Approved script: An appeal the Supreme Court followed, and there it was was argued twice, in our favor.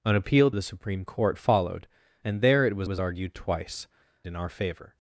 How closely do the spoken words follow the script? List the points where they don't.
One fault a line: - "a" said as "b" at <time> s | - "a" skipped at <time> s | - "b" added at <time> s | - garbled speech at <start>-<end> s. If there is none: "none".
none